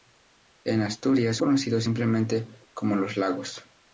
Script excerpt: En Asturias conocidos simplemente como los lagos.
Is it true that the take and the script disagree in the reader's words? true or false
false